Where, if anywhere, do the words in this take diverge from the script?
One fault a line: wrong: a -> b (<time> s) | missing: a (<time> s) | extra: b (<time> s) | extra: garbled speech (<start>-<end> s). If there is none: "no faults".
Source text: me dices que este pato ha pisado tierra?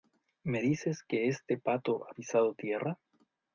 no faults